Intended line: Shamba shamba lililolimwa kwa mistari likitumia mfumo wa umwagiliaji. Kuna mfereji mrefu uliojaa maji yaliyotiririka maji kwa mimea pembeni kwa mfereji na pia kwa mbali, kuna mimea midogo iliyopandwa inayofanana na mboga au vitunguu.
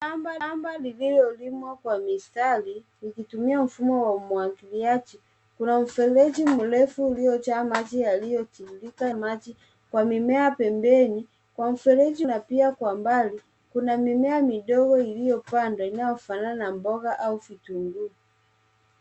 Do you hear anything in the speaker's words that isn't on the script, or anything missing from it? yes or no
no